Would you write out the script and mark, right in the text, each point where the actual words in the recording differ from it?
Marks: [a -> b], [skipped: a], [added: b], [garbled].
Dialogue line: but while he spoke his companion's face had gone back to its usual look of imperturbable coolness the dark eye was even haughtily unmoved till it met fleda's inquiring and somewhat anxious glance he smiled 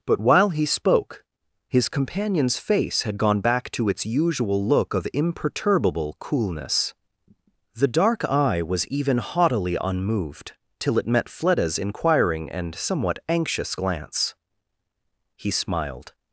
but while he spoke his companion's face had gone back to its usual look of imperturbable coolness the dark eye was even haughtily unmoved till it met fleda's inquiring and somewhat anxious glance he smiled